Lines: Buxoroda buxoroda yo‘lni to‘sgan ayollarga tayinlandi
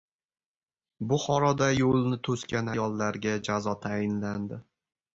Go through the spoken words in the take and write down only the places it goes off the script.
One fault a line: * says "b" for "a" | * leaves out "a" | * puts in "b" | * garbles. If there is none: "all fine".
* leaves out "buxoroda"
* puts in "jazo"